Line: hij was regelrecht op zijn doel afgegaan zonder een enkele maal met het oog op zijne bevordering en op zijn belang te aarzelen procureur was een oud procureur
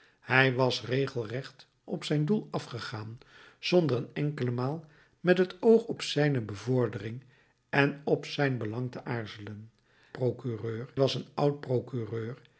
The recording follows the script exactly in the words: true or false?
true